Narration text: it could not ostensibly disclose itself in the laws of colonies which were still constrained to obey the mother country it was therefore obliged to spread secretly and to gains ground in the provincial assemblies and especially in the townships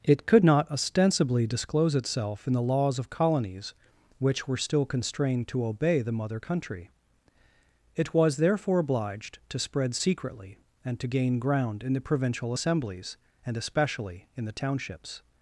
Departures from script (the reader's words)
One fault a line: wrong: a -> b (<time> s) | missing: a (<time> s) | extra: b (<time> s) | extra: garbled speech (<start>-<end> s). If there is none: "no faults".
wrong: gains -> gain (11.1 s)